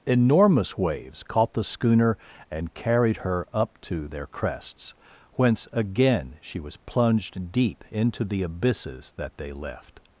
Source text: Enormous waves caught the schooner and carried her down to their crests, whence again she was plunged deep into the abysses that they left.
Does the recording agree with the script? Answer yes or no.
no